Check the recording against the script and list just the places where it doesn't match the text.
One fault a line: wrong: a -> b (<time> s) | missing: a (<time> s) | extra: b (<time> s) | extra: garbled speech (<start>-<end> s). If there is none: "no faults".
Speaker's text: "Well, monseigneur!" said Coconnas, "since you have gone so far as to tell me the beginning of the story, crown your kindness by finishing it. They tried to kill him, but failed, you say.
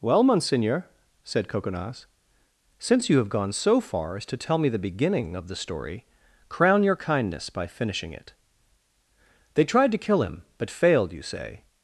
no faults